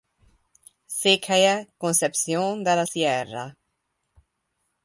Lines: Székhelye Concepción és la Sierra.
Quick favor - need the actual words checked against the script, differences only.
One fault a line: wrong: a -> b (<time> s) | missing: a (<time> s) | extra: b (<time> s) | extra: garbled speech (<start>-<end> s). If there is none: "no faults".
wrong: és -> de (2.6 s)